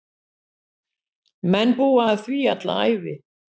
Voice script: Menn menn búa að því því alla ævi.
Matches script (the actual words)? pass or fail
fail